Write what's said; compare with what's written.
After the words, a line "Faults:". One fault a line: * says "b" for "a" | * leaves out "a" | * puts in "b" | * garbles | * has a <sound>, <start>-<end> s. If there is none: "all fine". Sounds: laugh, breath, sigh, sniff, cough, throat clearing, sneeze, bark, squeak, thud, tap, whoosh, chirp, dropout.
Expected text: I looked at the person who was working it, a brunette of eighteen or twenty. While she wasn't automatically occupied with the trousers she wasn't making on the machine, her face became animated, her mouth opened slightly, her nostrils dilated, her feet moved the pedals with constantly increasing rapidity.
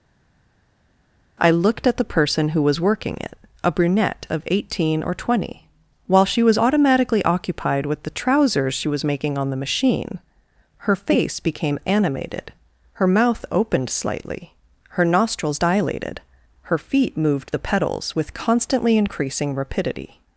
I looked at the person who was working it, a brunette of eighteen or twenty. While she was automatically occupied with the trousers she was making on the machine, her face became animated, her mouth opened slightly, her nostrils dilated, her feet moved the pedals with constantly increasing rapidity.
Faults:
* says "was" for "wasn't"
* says "was" for "wasn't"